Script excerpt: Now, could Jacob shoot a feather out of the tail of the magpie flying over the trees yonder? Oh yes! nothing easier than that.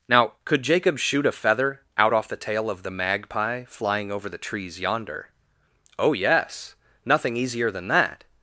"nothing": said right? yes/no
yes